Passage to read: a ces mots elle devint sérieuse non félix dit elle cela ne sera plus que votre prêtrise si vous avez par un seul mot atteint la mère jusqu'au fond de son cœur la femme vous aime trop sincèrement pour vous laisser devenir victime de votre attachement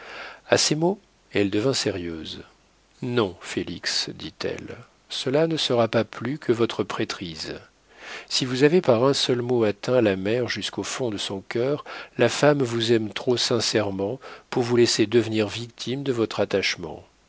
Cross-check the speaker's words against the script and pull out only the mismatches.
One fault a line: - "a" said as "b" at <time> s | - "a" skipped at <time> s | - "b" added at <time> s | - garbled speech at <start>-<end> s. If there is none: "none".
- "pas" added at 5.9 s